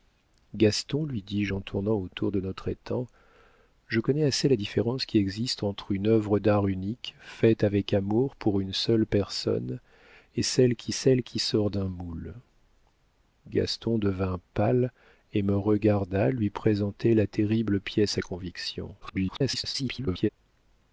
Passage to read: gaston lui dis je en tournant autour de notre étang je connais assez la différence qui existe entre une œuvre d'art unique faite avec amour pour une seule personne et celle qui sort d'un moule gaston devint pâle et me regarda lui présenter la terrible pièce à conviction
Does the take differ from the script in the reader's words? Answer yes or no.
yes